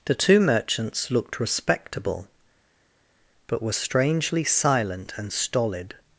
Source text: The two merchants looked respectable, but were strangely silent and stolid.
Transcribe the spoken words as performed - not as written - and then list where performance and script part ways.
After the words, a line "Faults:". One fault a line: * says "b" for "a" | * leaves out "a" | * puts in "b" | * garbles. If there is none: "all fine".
The two merchants looked respectable, but were strangely silent and stolid.
Faults:
all fine